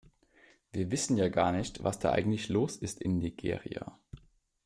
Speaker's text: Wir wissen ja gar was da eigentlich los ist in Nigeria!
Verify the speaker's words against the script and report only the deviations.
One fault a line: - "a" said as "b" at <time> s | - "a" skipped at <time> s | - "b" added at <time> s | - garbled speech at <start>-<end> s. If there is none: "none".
- "nicht" added at 1.5 s